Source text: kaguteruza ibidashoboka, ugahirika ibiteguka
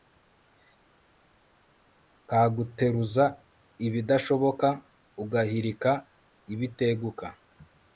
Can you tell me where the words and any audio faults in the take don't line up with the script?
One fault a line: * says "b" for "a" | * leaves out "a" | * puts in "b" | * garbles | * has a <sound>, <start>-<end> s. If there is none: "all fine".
all fine